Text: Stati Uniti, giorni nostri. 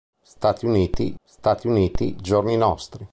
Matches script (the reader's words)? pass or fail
fail